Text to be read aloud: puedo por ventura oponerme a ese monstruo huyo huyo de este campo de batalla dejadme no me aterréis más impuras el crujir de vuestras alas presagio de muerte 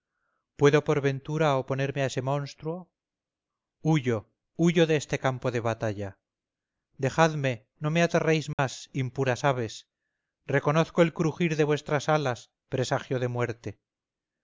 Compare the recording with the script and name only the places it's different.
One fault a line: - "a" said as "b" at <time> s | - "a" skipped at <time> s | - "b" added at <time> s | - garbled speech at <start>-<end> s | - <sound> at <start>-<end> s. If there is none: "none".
- dropout at 8.5-8.6 s
- "aves reconozco" added at 9.4 s